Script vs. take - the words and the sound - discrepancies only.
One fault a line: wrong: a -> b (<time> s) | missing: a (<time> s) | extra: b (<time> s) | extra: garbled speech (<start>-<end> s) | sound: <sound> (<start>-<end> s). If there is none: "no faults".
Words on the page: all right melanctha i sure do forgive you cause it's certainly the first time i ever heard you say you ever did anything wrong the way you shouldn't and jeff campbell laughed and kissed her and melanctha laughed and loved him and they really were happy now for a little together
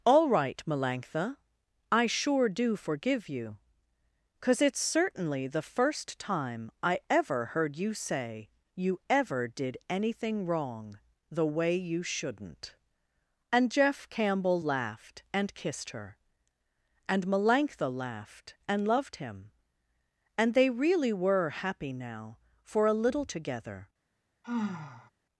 sound: sigh (24.4-25.1 s)